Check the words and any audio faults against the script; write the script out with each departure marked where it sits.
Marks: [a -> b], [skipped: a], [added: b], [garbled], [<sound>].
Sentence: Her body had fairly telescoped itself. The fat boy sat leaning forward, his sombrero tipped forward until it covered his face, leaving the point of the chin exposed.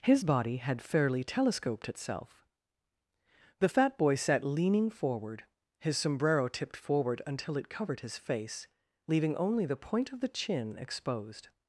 [Her -> His] body had fairly telescoped itself. The fat boy sat leaning forward, his sombrero tipped forward until it covered his face, leaving [added: only] the point of the chin exposed.